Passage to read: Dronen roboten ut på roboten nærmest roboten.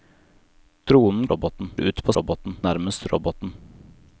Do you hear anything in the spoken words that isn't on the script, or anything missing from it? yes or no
no